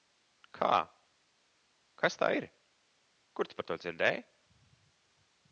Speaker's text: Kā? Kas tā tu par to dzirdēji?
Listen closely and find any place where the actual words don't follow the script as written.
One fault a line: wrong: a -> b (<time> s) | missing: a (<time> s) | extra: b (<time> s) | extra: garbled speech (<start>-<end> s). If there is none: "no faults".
extra: ir Kur (2.4 s)